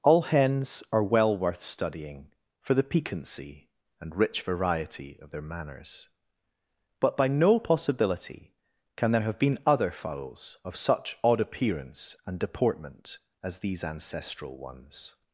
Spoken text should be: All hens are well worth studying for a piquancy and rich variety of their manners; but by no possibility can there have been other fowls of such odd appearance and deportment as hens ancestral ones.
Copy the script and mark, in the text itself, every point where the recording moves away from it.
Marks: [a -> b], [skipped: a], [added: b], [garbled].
All hens are well worth studying for [a -> the] piquancy and rich variety of their manners; but by no possibility can there have been other fowls of such odd appearance and deportment as [hens -> these] ancestral ones.